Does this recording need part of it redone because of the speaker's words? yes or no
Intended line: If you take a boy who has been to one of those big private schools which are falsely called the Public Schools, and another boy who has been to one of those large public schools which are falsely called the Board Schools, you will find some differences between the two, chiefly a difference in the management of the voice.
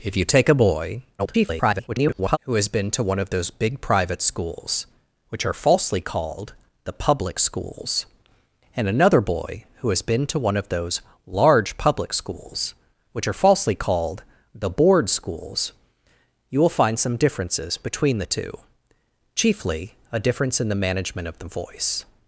yes